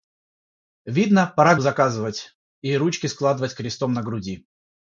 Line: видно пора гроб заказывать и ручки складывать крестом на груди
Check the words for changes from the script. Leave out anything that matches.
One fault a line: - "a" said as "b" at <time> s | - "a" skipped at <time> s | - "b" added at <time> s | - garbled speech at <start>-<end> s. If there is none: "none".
- "гроб" skipped at 1.6 s